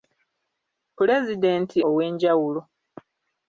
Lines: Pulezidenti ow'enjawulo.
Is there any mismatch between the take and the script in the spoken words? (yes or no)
no